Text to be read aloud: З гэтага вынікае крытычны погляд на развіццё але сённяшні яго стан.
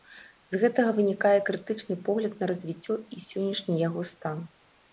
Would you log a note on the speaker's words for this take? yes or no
yes